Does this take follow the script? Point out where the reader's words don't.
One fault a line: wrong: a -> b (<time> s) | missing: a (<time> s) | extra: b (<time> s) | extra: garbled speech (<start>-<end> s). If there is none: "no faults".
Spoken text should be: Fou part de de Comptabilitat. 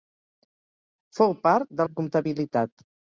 no faults